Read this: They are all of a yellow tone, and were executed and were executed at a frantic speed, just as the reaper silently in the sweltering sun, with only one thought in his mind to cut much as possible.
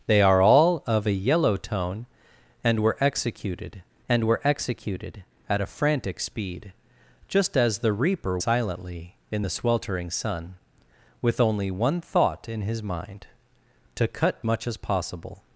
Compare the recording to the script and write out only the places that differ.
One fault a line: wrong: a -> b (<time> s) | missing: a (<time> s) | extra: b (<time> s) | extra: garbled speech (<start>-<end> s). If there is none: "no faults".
no faults